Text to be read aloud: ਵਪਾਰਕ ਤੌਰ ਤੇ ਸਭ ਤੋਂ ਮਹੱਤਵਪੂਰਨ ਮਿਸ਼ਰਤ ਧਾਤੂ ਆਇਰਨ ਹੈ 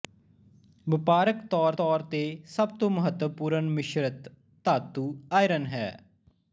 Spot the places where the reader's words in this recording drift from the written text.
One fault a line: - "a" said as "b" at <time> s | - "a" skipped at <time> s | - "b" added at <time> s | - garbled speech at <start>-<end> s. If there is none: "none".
- "ਤੌਰ" added at 1.7 s